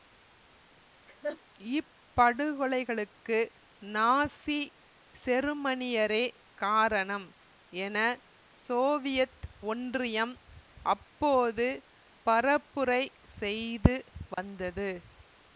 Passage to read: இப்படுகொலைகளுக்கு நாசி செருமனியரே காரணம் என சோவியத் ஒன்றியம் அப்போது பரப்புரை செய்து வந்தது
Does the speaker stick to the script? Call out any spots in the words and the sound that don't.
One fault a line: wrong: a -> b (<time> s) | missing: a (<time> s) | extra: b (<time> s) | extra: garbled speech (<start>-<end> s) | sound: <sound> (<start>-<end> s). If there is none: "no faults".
sound: laugh (1.1-1.4 s)
sound: dropout (14.3-14.4 s)